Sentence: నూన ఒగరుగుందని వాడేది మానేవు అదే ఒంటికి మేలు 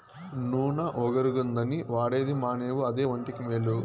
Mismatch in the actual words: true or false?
false